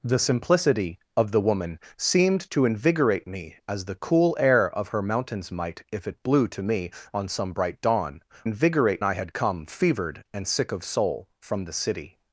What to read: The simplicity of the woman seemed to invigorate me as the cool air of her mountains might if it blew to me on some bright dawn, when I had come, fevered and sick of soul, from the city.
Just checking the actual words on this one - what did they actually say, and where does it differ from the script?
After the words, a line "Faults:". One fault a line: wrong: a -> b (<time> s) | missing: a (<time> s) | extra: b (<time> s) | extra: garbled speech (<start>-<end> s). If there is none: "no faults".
The simplicity of the woman seemed to invigorate me as the cool air of her mountains might if it blew to me on some bright dawn, invigorate I had come, fevered and sick of soul, from the city.
Faults:
wrong: when -> invigorate (8.4 s)